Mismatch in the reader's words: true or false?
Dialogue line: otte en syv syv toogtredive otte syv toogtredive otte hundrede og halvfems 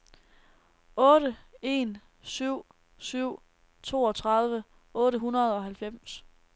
true